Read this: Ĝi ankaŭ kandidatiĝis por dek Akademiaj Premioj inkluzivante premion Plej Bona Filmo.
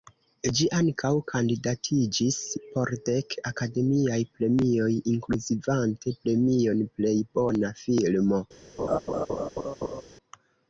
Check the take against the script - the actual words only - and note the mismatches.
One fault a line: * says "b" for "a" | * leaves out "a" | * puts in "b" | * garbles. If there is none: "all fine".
all fine